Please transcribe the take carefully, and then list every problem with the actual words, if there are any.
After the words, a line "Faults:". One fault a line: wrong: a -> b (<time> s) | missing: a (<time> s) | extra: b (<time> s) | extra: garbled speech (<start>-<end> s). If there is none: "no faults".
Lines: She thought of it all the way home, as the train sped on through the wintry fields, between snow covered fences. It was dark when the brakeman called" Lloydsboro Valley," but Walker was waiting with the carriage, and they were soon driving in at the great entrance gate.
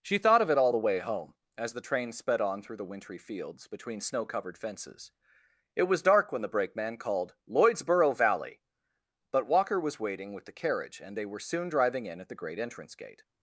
She thought of it all the way home, as the train sped on through the wintry fields, between snow covered fences. It was dark when the brakeman called" Lloydsboro Valley," but Walker was waiting with the carriage, and they were soon driving in at the great entrance gate.
Faults:
no faults